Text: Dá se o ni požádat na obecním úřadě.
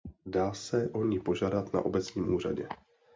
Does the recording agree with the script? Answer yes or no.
yes